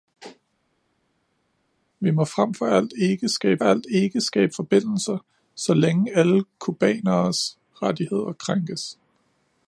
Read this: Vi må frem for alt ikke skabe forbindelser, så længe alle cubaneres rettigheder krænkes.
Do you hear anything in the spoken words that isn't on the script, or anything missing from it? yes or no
yes